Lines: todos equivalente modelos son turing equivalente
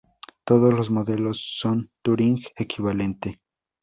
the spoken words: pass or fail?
fail